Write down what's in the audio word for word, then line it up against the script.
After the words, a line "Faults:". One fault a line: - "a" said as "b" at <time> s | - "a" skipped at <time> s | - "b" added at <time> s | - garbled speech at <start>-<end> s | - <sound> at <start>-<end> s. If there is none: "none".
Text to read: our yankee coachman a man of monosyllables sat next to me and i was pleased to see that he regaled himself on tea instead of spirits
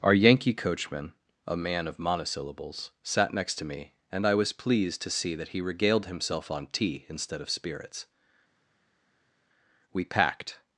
our yankee coachman a man of monosyllables sat next to me and i was pleased to see that he regaled himself on tea instead of spirits we packed
Faults:
- "we packed" added at 9.9 s